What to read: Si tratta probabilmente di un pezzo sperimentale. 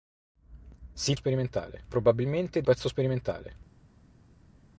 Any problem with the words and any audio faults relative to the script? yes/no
yes